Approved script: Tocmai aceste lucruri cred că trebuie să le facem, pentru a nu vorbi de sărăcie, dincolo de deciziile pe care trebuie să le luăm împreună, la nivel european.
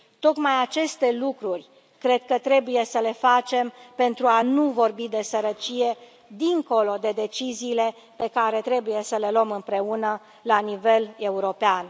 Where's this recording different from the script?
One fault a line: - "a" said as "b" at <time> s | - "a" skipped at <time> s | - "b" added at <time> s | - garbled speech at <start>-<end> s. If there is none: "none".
none